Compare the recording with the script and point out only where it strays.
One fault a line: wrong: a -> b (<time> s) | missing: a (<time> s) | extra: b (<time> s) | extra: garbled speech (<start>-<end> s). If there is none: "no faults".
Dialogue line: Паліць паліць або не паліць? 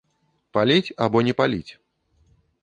missing: паліць (0.9 s)